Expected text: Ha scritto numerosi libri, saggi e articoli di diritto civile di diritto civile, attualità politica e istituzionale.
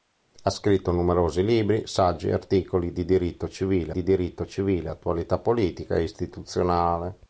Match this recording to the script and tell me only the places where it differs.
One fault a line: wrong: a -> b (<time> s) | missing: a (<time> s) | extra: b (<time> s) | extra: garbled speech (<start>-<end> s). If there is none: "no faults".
no faults